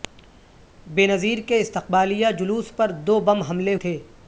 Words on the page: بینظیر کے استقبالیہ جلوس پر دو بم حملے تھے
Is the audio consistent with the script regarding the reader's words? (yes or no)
yes